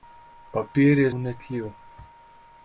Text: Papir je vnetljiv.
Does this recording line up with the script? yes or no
yes